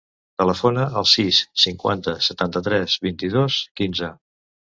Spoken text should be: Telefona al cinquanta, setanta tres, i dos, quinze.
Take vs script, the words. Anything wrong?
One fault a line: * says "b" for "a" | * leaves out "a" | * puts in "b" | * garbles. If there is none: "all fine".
* puts in "sis"
* puts in "vint"